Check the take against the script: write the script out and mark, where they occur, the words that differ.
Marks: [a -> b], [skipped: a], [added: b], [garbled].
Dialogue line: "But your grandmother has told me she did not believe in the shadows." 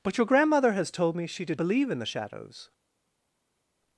"But your grandmother has told me she did [skipped: not] believe in the shadows."